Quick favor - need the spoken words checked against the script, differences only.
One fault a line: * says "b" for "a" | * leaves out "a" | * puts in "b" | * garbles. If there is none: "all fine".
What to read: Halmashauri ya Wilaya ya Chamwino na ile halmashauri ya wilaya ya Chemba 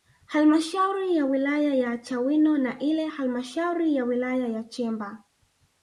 all fine